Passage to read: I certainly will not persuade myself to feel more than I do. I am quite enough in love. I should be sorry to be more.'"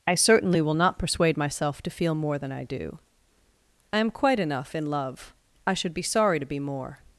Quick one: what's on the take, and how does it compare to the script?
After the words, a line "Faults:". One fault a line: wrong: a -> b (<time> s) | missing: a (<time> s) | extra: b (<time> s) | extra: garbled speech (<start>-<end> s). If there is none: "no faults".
I certainly will not persuade myself to feel more than I do. I am quite enough in love. I should be sorry to be more.'"
Faults:
no faults